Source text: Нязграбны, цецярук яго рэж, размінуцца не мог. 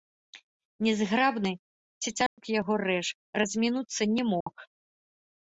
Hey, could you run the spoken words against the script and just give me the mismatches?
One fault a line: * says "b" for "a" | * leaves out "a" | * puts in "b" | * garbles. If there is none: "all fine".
all fine